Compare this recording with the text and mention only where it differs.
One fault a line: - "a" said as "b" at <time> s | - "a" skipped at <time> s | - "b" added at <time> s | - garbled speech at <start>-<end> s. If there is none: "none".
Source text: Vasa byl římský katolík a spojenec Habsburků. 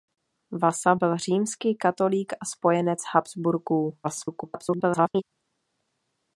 - garbled speech at 4.0-5.2 s